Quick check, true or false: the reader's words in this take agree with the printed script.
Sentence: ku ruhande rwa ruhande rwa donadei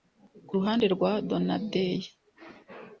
false